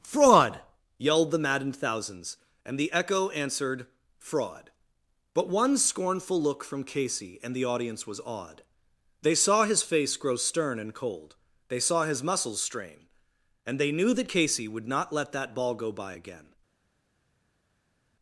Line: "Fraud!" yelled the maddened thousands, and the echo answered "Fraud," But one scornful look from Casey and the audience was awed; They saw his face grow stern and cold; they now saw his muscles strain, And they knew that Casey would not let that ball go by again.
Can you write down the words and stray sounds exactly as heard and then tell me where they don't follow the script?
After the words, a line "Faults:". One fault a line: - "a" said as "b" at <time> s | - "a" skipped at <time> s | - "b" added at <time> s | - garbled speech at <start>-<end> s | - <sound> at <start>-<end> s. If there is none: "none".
"Fraud!" yelled the maddened thousands, and the echo answered "Fraud," But one scornful look from Casey and the audience was awed; They saw his face grow stern and cold; they saw his muscles strain, And they knew that Casey would not let that ball go by again.
Faults:
- "now" skipped at 11.8 s